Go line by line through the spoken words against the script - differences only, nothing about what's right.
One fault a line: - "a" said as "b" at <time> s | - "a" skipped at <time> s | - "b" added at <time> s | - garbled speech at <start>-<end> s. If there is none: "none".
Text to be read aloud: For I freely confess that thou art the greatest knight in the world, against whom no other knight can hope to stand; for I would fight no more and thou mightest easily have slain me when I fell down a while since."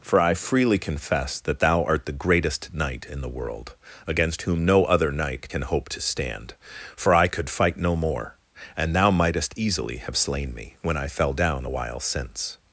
- "would" said as "could" at 7.3 s